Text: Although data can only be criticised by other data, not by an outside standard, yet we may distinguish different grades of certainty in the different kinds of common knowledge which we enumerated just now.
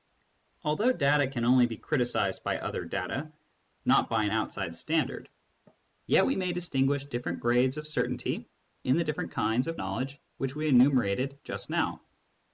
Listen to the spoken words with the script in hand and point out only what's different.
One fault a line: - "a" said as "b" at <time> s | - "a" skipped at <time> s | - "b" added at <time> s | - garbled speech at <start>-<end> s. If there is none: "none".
- "common" skipped at 9.8 s